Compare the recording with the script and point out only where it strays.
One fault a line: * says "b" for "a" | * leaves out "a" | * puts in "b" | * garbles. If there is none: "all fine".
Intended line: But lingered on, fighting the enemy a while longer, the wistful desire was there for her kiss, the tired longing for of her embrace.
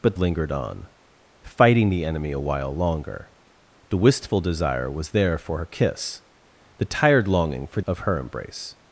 all fine